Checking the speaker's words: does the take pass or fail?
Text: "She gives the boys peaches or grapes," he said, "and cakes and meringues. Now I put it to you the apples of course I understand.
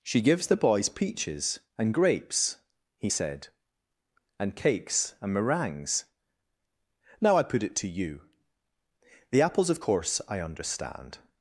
fail